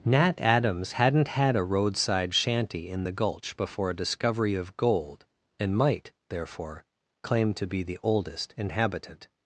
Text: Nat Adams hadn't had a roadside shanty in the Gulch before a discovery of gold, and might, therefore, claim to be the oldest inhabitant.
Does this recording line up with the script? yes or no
yes